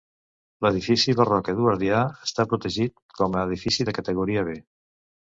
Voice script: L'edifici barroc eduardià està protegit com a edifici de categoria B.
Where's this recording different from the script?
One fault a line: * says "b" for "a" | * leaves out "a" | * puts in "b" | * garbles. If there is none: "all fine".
all fine